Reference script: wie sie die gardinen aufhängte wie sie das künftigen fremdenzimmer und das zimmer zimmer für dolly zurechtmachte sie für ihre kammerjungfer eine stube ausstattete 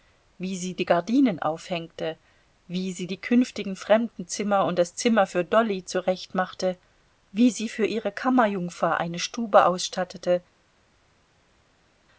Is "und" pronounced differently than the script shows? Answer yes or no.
no